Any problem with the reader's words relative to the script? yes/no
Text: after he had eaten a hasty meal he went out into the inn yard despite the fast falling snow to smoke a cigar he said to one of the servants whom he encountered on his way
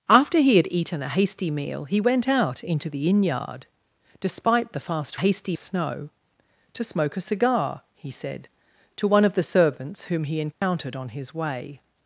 yes